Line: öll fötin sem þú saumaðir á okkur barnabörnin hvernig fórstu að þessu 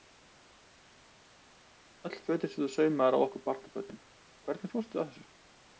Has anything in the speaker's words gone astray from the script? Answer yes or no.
no